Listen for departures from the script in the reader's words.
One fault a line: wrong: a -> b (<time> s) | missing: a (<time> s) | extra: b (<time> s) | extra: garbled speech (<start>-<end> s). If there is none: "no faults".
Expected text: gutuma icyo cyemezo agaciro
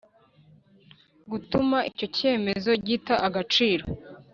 extra: gita (2.9 s)